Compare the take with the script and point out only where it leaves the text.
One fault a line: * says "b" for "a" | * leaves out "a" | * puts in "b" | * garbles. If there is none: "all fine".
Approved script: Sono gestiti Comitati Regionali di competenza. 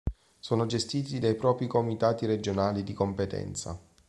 * puts in "dai propri"